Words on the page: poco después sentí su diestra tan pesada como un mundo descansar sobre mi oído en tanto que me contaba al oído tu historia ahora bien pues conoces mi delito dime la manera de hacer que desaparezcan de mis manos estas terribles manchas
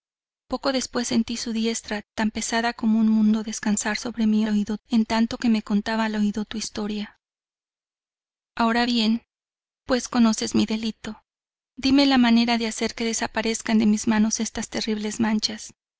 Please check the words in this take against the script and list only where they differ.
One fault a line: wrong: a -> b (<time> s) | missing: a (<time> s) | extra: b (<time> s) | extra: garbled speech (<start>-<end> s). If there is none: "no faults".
no faults